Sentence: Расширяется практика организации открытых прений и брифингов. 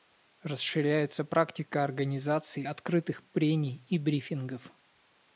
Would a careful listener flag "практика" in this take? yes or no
no